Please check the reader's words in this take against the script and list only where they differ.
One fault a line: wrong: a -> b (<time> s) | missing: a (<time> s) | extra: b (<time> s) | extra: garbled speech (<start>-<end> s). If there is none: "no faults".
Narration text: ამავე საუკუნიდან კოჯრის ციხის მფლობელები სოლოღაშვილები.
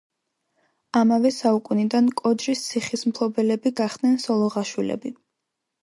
extra: გახდნენ (3.8 s)